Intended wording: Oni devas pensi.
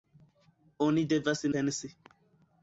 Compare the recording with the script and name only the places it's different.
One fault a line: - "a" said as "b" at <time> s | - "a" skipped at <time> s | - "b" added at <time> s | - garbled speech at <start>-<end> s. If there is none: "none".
none